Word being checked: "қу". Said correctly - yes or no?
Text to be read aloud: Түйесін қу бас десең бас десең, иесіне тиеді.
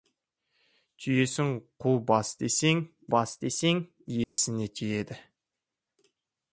yes